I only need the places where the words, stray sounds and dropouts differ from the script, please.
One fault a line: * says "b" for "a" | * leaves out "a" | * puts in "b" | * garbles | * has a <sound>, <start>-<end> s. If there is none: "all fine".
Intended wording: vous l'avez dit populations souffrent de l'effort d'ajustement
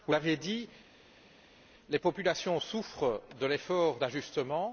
* puts in "les"